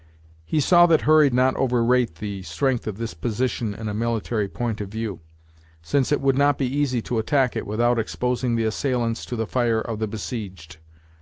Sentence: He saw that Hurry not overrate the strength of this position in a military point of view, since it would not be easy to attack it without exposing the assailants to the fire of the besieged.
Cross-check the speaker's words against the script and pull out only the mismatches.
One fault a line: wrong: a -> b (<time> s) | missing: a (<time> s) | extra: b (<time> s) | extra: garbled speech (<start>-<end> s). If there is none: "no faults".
no faults